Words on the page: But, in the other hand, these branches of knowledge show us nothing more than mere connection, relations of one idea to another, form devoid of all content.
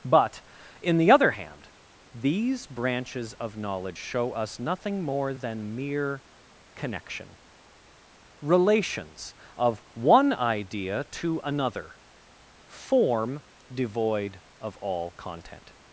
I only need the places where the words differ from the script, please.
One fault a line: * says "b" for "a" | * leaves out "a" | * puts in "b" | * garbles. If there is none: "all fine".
all fine